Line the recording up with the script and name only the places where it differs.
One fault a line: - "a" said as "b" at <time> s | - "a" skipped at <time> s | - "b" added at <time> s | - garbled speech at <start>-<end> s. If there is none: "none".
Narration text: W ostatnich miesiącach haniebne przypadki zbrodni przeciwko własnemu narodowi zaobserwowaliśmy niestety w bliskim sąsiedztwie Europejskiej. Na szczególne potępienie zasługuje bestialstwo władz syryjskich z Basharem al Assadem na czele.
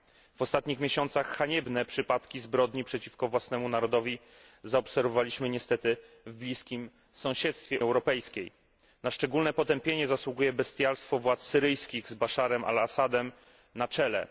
none